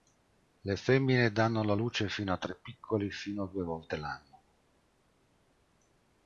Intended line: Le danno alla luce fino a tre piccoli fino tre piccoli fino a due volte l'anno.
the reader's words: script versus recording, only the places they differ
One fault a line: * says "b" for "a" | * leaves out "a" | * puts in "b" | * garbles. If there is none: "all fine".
* puts in "femmine"
* leaves out "tre piccoli fino"